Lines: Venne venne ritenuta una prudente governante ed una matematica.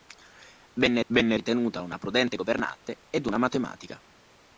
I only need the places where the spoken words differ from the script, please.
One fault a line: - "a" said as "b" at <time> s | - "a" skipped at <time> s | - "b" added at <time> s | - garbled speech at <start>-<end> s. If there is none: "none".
none